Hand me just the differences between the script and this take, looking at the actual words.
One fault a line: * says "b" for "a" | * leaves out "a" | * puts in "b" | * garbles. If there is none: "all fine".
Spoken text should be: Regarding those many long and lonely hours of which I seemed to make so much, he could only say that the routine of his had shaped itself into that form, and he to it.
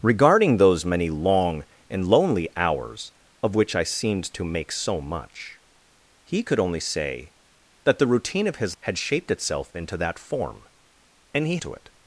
all fine